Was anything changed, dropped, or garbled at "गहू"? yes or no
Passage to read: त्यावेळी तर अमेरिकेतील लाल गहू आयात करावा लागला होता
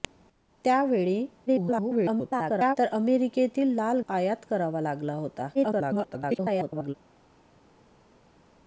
yes